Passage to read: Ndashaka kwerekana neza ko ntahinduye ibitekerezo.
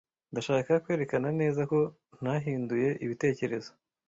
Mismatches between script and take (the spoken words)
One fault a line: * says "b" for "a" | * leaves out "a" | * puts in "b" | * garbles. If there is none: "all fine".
all fine